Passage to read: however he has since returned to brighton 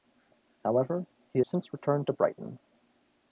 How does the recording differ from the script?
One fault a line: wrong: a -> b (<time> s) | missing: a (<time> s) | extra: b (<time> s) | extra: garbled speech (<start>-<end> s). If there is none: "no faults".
missing: has (1.4 s)